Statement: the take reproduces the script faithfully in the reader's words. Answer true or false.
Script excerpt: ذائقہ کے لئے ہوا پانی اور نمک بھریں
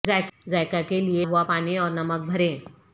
true